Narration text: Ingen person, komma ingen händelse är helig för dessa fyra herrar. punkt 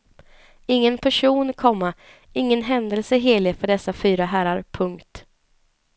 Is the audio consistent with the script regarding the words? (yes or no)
yes